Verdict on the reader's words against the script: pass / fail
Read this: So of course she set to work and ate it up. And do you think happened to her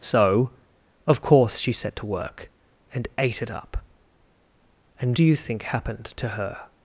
pass